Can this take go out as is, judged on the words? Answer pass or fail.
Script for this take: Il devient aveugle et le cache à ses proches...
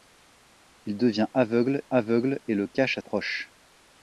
fail